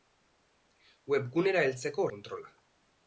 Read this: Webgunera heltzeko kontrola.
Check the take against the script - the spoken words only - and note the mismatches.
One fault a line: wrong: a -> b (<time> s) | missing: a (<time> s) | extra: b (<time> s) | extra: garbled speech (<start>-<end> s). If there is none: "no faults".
no faults